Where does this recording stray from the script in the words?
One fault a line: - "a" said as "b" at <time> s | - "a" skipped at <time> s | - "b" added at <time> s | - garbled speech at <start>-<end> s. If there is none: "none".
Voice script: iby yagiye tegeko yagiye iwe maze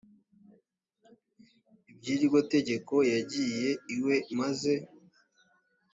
- "yagiye" said as "iryo" at 2.1 s